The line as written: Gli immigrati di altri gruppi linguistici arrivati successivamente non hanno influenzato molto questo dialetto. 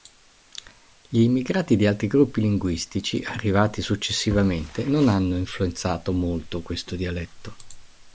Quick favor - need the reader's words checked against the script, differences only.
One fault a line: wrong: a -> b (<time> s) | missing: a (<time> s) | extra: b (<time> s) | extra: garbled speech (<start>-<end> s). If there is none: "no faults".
no faults